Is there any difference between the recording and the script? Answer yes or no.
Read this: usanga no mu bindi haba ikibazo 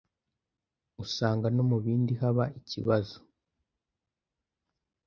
no